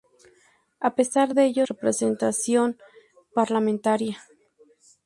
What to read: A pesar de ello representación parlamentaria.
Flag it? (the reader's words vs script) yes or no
no